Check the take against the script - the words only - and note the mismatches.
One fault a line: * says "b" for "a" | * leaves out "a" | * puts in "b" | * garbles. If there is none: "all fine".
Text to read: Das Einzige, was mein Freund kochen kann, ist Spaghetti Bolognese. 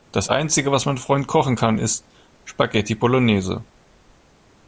all fine